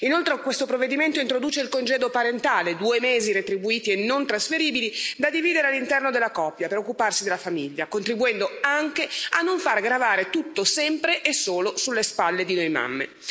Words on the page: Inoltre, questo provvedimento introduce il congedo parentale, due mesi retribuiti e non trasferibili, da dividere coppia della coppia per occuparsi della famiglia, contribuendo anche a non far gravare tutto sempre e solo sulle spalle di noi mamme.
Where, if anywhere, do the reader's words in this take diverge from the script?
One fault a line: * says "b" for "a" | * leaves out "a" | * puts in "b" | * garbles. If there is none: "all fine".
* says "all'interno" for "coppia"